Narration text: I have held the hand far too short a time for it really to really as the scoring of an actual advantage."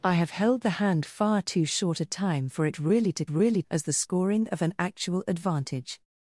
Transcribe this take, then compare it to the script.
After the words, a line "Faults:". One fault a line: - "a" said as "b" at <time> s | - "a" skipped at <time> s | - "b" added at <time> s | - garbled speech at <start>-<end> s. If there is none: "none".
I have held the hand far too short a time for it really to really as the scoring of an actual advantage."
Faults:
none